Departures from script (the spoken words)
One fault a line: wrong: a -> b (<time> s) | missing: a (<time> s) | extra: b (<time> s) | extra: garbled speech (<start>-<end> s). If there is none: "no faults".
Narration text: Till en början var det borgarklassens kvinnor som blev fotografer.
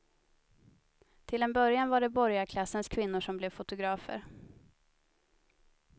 no faults